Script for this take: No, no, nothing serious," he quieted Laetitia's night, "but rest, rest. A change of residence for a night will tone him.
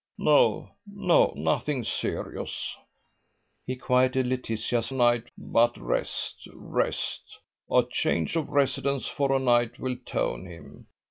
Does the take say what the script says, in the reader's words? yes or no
yes